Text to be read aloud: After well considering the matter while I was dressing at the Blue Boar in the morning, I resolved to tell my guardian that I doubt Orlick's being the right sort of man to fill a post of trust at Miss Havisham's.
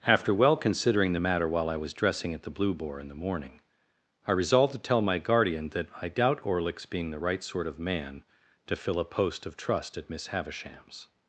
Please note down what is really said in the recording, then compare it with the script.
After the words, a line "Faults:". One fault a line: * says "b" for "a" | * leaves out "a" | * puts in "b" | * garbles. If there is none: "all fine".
After well considering the matter while I was dressing at the Blue Boar in the morning, I resolved to tell my guardian that I doubt Orlick's being the right sort of man to fill a post of trust at Miss Havisham's.
Faults:
all fine